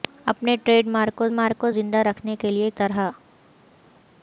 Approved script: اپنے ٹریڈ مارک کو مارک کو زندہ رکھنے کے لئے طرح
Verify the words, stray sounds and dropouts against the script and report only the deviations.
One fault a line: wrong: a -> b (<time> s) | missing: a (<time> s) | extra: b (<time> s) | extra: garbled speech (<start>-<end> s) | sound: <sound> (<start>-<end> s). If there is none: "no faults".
no faults